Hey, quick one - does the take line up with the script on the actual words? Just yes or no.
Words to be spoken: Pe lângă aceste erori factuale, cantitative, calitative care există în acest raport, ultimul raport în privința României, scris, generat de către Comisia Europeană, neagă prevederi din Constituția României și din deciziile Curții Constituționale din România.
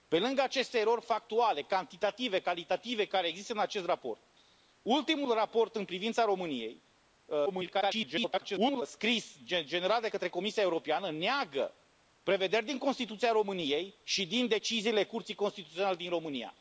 no